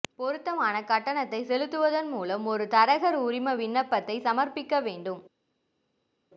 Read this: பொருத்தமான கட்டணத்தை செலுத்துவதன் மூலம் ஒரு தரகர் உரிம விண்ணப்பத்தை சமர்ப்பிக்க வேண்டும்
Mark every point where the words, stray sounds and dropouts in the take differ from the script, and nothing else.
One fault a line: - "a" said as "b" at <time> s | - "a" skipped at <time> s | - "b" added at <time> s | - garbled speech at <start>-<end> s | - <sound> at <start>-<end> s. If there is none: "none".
none